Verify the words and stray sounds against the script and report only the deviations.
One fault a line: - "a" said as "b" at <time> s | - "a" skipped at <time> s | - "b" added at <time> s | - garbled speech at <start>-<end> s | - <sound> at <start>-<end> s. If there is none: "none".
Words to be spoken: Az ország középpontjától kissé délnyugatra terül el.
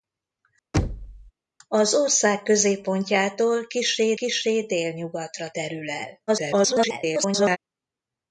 - thud at 0.7-1.3 s
- "kissé" added at 4.1 s
- garbled speech at 6.3-7.6 s